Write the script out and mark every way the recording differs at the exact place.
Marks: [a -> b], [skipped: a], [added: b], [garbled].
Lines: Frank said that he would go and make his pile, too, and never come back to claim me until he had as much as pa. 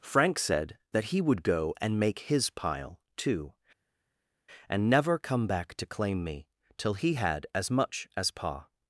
Frank said that he would go and make his pile, too, and never come back to claim me [until -> till] he had as much as pa.